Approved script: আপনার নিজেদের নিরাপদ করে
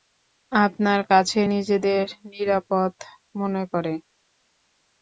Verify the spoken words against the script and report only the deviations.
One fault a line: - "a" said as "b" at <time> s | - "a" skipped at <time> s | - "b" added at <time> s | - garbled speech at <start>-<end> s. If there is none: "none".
- "কাছে" added at 1.1 s
- "মনে" added at 3.3 s